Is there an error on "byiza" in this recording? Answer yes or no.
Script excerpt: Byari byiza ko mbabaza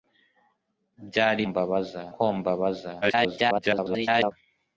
yes